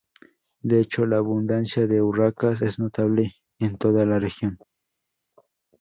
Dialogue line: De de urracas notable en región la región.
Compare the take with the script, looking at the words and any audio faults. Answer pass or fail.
fail